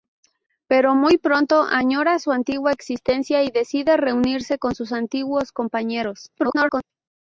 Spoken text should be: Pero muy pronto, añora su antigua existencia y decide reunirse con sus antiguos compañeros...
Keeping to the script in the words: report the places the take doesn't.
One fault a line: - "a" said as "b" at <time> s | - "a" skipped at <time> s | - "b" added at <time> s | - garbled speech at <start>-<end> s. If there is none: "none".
- garbled speech at 6.4-6.8 s